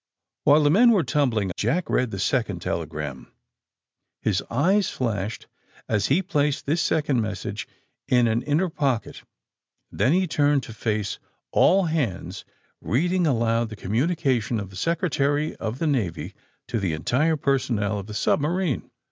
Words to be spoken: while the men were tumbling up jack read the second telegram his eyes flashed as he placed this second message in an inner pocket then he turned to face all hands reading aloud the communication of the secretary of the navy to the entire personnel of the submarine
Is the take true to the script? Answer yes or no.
no